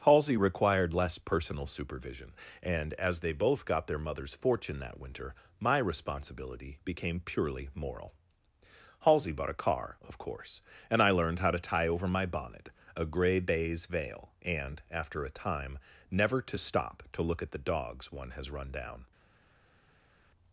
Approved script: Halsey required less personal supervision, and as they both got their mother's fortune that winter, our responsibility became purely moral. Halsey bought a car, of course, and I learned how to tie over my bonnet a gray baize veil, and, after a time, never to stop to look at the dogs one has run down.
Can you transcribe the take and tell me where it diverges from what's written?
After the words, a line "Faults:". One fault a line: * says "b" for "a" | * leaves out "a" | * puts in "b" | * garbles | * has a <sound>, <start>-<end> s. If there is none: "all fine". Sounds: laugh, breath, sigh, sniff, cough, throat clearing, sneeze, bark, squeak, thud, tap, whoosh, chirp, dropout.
Halsey required less personal supervision, and as they both got their mother's fortune that winter, my responsibility became purely moral. Halsey bought a car, of course, and I learned how to tie over my bonnet a gray baize veil, and, after a time, never to stop to look at the dogs one has run down.
Faults:
* says "my" for "our"